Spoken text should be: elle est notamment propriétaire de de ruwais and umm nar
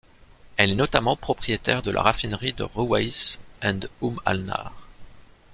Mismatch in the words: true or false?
true